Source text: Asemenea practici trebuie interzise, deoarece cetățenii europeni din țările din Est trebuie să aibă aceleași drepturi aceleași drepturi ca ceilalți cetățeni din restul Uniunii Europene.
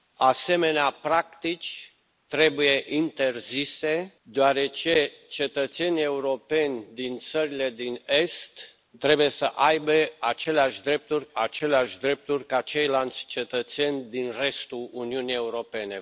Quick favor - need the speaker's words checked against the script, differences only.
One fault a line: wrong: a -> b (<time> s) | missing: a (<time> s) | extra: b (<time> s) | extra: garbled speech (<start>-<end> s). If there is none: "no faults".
no faults